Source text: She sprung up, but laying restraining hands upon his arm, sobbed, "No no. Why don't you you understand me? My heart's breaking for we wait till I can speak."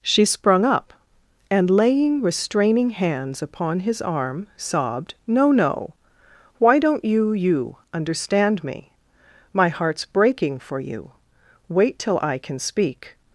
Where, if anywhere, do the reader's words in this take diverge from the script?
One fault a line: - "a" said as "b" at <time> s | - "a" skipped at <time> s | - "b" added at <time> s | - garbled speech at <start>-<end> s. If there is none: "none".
- "but" said as "and" at 1.5 s
- "we" said as "you" at 10.8 s